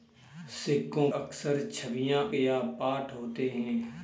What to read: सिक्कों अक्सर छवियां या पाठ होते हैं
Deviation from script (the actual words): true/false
false